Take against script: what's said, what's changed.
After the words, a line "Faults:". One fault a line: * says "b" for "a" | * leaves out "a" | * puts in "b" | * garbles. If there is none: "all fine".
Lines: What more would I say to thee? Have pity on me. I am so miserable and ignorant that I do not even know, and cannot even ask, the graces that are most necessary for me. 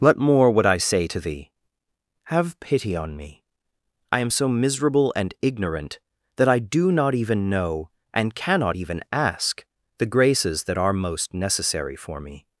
What more would I say to thee? Have pity on me. I am so miserable and ignorant that I do not even know, and cannot even ask, the graces that are most necessary for me.
Faults:
all fine